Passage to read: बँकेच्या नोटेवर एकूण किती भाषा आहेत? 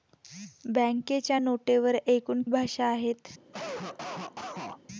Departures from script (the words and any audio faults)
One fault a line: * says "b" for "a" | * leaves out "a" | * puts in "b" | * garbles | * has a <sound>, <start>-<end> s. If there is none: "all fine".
* leaves out "किती"
* has a cough, 3.5-4.8 s